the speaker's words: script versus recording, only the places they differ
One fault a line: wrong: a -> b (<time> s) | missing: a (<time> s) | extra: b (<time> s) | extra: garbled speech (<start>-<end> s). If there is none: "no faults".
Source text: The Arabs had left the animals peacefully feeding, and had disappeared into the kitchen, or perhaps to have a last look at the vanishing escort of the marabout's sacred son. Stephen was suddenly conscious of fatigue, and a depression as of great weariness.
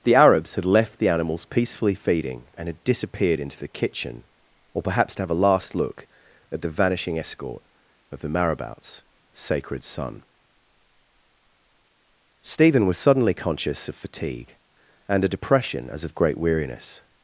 no faults